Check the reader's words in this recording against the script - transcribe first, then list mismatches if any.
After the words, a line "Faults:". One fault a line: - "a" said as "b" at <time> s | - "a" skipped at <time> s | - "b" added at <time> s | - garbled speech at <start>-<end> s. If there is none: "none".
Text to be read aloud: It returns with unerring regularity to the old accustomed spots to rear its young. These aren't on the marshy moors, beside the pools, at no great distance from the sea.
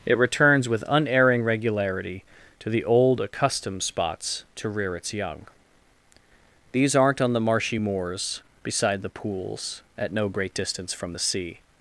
It returns with unerring regularity to the old accustomed spots to rear its young. These aren't on the marshy moors, beside the pools, at no great distance from the sea.
Faults:
none